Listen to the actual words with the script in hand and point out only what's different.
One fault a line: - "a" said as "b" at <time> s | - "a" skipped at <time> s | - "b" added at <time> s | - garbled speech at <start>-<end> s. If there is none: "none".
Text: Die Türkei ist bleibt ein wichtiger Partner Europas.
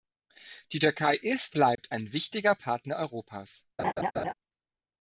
none